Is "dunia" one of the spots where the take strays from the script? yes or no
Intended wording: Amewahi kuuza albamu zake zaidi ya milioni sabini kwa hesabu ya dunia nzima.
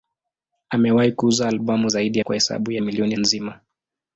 yes